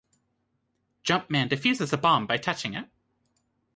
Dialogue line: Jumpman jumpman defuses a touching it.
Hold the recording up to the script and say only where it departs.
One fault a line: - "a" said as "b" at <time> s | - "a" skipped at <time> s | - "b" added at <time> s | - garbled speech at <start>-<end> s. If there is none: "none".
- "jumpman" skipped at 1.5 s
- "bomb by" added at 2.0 s